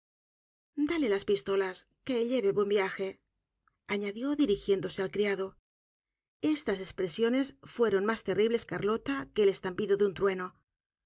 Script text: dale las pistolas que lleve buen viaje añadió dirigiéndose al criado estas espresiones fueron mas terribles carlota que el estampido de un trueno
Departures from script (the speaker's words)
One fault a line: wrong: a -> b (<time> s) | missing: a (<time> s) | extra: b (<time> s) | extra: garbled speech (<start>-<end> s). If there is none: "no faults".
no faults